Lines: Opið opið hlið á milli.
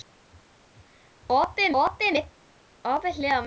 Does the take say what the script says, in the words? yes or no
yes